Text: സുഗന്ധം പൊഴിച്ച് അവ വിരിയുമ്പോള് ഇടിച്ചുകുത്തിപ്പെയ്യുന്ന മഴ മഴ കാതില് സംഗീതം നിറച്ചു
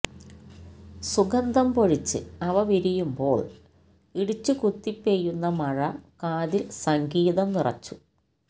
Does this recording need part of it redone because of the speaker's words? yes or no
yes